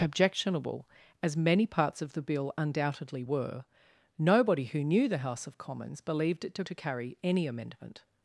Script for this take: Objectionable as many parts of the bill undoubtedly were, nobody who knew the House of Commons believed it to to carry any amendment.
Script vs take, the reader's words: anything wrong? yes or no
no